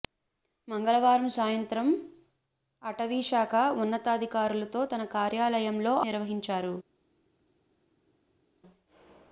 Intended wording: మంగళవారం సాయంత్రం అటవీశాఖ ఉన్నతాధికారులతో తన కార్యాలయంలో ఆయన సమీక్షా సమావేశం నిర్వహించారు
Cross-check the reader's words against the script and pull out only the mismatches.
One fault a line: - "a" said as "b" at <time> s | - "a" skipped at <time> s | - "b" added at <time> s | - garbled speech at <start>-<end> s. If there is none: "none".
- "ఆయన సమీక్షా సమావేశం" skipped at 5.9 s